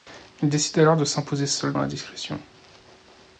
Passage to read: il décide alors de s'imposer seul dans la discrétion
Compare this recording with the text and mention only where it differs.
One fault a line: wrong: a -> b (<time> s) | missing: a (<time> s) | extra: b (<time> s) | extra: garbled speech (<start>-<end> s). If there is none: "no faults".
missing: dans (1.8 s)